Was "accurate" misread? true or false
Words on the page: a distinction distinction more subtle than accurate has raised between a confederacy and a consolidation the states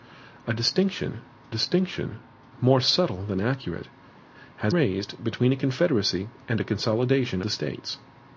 false